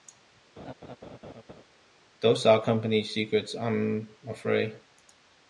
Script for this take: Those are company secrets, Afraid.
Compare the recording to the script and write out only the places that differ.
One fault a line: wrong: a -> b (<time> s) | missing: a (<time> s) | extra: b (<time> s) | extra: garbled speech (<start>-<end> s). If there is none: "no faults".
extra: I'm (3.5 s)